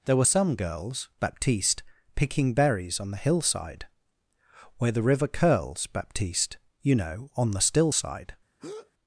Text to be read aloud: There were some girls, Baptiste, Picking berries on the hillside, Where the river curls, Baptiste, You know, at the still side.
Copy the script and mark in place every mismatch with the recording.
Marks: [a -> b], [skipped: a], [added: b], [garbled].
There were some girls, Baptiste, Picking berries on the hillside, Where the river curls, Baptiste, You know, [at -> on] the still side.